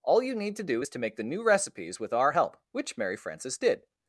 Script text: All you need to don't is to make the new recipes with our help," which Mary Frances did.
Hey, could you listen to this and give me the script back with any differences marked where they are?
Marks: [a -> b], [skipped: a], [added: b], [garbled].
All you need to [don't -> do] is to make the new recipes with our help," which Mary Frances did.